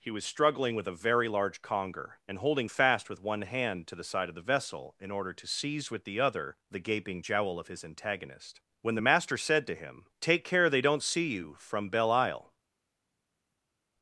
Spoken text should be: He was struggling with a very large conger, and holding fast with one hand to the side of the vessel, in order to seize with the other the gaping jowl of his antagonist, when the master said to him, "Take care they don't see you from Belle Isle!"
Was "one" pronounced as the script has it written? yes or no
yes